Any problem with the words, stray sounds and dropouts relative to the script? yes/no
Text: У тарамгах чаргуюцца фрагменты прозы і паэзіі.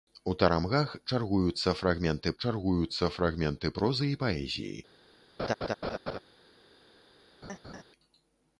yes